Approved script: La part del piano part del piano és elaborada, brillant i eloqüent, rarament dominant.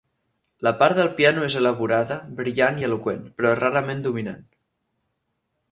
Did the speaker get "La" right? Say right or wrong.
right